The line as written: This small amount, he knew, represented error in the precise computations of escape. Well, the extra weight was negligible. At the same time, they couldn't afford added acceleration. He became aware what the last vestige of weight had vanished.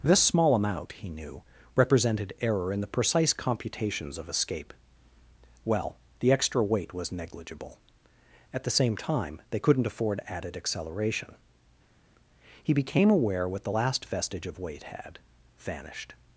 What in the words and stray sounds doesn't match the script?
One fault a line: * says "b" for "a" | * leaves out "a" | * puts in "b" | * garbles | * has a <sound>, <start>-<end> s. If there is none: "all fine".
all fine